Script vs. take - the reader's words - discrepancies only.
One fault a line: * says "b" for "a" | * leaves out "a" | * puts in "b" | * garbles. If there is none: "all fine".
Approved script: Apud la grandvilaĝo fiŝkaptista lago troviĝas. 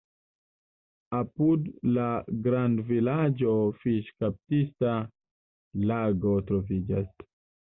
all fine